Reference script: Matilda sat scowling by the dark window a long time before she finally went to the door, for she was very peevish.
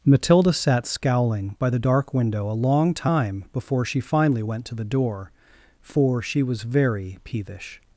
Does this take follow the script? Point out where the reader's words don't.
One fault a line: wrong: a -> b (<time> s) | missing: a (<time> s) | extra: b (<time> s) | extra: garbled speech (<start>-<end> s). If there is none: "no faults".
no faults